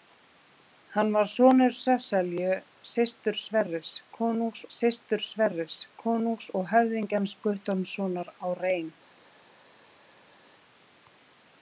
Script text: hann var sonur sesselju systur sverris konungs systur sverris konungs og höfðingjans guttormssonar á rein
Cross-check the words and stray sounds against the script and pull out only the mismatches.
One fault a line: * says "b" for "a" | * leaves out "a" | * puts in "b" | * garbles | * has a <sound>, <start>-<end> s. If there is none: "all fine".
all fine